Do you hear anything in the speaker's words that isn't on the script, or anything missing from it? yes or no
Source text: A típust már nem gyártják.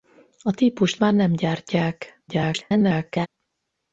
yes